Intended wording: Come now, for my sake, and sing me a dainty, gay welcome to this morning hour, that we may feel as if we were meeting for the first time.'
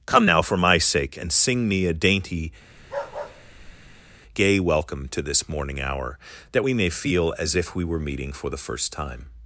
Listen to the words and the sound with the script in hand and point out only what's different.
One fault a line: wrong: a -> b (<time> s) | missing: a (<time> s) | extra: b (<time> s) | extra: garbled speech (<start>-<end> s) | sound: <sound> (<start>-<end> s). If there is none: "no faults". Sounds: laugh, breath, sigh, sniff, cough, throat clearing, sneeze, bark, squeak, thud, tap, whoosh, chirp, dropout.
sound: bark (2.8-4.2 s)